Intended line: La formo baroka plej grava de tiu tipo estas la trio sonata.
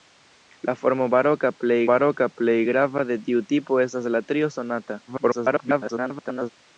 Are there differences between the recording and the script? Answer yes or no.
yes